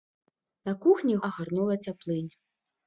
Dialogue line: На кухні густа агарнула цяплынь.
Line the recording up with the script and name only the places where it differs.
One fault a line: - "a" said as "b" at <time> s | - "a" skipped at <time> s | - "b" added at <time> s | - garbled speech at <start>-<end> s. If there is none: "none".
- "густа" skipped at 1.1 s